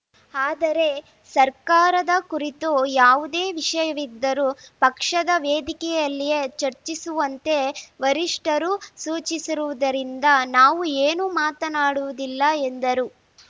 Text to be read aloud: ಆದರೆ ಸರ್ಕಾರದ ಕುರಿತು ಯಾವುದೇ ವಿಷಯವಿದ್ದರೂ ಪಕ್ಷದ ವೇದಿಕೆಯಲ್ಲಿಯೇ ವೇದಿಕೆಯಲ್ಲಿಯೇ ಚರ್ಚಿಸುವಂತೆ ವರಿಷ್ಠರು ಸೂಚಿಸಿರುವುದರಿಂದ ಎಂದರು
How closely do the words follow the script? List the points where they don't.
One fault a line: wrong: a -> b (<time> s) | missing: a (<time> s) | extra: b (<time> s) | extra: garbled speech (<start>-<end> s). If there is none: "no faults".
missing: ವೇದಿಕೆಯಲ್ಲಿಯೇ (6.4 s)
extra: ನಾವು ಏನೂ ಮಾತನಾಡುವುದಿಲ್ಲ (10.5 s)